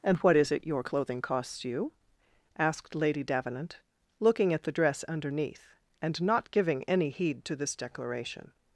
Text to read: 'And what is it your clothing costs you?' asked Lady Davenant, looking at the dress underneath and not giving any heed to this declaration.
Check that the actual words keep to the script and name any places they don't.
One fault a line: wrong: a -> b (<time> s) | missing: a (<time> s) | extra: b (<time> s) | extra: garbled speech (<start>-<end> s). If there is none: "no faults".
no faults